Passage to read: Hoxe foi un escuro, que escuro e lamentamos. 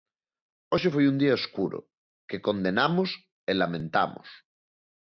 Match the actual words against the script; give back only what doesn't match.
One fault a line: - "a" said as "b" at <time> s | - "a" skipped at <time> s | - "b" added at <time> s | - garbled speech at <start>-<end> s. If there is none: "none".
- "día" added at 1.2 s
- "escuro" said as "condenamos" at 2.5 s